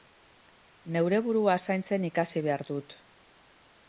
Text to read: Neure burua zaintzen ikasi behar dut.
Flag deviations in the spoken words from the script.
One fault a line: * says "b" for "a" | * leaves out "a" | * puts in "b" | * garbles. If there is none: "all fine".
all fine